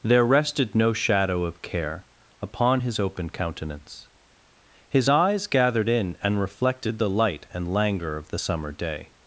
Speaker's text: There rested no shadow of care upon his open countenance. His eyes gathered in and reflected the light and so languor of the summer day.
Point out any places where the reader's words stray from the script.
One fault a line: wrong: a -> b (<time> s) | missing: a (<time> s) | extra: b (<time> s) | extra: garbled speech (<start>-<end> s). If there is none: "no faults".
missing: so (7.7 s)